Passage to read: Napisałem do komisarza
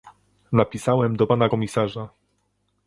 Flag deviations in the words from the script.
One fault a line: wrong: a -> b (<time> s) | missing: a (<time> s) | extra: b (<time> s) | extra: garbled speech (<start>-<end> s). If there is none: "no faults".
extra: pana (1.3 s)